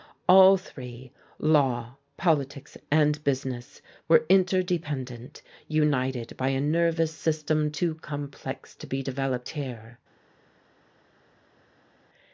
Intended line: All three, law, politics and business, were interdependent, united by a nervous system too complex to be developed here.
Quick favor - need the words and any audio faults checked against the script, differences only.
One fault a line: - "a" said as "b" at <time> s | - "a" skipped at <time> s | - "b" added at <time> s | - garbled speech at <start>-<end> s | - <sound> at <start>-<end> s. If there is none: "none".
none